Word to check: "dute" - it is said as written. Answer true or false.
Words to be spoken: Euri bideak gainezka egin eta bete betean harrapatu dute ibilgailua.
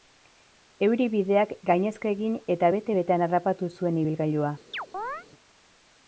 false